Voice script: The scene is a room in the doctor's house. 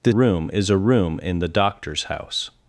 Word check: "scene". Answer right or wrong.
wrong